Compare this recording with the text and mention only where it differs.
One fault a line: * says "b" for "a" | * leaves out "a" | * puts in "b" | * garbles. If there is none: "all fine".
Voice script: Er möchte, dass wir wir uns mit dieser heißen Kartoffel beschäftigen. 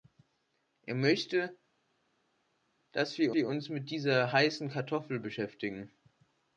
all fine